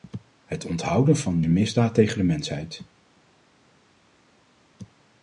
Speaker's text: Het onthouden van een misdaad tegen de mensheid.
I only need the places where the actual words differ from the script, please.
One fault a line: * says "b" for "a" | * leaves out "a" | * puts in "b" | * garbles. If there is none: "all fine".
all fine